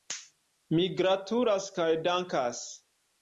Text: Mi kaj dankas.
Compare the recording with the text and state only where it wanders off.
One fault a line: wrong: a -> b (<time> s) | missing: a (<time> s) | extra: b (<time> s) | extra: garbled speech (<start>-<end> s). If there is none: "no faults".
extra: gratulas (1.0 s)